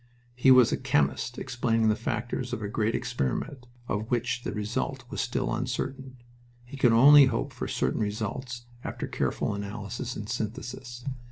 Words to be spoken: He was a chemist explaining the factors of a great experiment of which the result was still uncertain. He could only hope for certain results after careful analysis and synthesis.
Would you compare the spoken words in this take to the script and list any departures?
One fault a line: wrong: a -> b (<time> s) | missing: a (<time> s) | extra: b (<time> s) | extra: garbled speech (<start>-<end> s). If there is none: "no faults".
no faults